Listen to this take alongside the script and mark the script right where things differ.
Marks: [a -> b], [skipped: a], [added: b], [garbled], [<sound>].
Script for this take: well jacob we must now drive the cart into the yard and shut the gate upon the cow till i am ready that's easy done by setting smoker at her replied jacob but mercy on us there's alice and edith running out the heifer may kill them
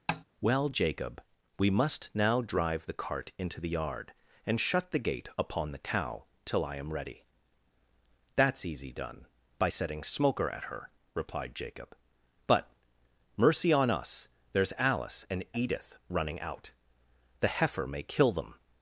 [tap] well jacob we must now drive the cart into the yard and shut the gate upon the cow till i am ready that's easy done by setting smoker at her replied jacob but mercy on us there's alice and edith running out the heifer may kill them